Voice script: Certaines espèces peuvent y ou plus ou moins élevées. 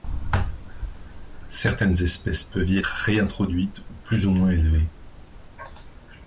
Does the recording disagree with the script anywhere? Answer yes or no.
yes